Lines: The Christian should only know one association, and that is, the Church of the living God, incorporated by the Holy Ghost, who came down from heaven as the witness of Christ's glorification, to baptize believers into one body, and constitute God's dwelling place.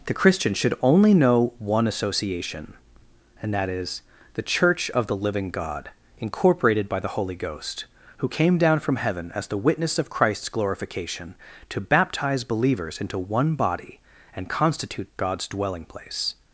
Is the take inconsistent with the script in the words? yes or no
no